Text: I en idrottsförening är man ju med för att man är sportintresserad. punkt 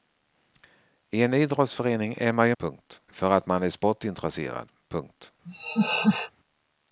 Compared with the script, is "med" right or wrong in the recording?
wrong